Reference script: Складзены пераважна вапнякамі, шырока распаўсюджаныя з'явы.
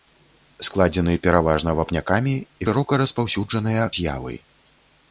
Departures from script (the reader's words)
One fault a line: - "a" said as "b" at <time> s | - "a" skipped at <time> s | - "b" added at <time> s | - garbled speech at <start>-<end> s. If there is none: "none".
none